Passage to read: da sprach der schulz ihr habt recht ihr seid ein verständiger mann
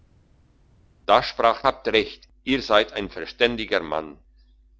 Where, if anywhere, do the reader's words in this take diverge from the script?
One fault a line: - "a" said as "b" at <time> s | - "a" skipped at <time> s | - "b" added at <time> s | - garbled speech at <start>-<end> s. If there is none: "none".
- "der schulz ihr" skipped at 1.6 s